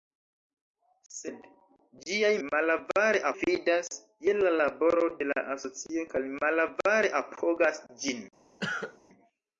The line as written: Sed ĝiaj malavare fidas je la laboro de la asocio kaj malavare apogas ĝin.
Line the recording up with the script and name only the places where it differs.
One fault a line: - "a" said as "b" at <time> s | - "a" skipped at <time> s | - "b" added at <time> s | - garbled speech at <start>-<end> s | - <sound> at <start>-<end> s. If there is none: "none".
- cough at 8.6-9.0 s